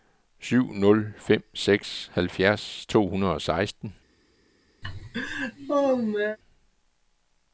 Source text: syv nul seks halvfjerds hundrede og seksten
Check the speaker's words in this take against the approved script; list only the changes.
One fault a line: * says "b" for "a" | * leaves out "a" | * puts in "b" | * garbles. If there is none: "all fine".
* puts in "fem"
* puts in "to"